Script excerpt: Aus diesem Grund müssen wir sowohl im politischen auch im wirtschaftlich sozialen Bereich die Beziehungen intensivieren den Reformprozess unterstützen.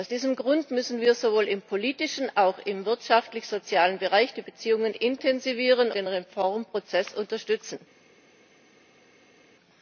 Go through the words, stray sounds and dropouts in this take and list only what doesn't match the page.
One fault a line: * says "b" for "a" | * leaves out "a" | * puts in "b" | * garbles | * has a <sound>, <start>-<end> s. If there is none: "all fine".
all fine